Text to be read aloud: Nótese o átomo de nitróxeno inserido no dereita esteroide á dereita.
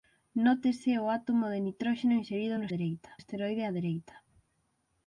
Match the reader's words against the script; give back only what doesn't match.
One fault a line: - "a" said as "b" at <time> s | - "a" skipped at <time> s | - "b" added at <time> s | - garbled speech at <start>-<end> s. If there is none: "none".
none